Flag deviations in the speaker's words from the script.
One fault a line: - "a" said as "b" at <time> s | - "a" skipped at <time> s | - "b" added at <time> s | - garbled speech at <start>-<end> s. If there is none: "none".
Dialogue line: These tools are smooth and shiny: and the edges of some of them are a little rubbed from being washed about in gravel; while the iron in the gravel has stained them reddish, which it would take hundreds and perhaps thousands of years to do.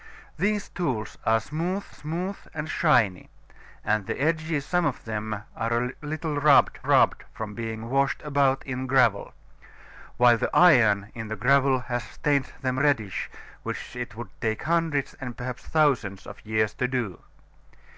- "smooth" added at 1.9 s
- "of" skipped at 4.7 s
- "rubbed" added at 6.8 s